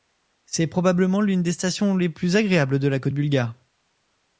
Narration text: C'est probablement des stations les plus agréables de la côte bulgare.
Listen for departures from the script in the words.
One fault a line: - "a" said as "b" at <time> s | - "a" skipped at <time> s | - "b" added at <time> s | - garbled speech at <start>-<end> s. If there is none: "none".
- "l'une" added at 1.2 s